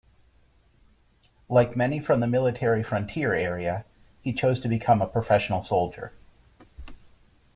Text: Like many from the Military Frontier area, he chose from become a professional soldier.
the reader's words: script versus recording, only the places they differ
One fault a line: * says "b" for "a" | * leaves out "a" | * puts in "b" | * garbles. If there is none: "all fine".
* says "to" for "from"